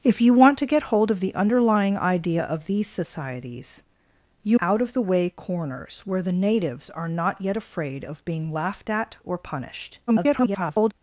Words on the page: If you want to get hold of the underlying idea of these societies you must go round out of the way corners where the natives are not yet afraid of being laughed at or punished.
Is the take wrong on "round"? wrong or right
wrong